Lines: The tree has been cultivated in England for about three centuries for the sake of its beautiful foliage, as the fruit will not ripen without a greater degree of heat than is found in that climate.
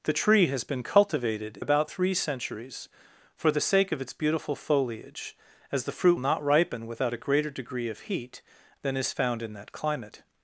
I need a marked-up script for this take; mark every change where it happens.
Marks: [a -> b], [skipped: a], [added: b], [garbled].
The tree has been cultivated [skipped: in England for] about three centuries for the sake of its beautiful foliage, as the fruit [skipped: will] not ripen without a greater degree of heat than is found in that climate.